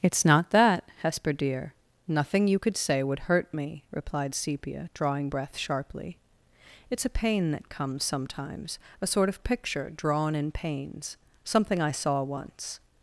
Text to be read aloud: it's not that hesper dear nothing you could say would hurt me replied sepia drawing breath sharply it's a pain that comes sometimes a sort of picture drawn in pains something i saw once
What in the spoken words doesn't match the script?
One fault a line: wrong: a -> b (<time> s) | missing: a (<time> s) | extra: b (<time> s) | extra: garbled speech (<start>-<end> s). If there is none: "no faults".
no faults